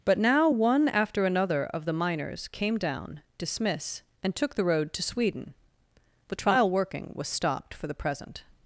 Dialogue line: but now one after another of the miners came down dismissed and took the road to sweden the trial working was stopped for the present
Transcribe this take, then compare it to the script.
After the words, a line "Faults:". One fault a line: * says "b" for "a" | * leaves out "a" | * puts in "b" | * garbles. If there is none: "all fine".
but now one after another of the miners came down dismiss and took the road to sweden the trial working was stopped for the present
Faults:
* says "dismiss" for "dismissed"